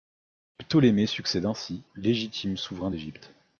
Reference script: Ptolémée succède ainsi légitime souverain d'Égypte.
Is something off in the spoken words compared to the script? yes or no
no